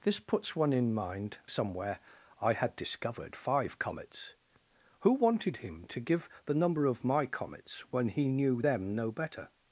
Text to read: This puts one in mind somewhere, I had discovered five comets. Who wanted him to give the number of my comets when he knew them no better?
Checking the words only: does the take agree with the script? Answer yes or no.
yes